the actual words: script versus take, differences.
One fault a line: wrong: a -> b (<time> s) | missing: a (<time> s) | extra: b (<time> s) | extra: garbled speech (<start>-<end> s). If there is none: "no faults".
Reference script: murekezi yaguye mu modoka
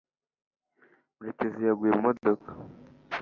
no faults